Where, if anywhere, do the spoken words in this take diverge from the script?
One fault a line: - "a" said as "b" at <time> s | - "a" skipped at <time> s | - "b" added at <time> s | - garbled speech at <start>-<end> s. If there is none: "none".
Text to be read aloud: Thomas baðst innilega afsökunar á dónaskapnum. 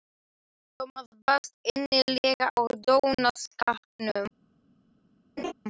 - "afsökunar" skipped at 2.5 s